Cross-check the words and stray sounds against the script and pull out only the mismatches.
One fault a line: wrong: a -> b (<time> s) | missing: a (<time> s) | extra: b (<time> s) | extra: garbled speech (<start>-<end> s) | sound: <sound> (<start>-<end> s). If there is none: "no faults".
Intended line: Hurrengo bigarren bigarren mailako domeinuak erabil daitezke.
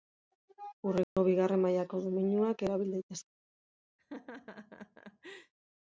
sound: dropout (1.0-1.2 s)
missing: bigarren (1.6 s)
sound: laugh (4.0-5.5 s)